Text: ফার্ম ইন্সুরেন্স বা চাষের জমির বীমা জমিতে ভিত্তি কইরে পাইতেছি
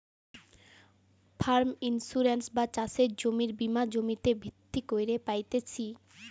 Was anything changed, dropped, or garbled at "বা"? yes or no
no